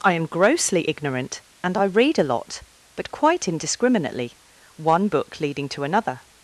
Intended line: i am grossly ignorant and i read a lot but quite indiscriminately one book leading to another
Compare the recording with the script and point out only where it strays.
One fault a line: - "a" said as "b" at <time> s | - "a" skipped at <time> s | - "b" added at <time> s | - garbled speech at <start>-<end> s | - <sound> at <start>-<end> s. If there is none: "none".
none